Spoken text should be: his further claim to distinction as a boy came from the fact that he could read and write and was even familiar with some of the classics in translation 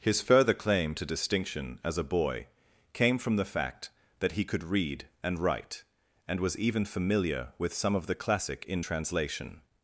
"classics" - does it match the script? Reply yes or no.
no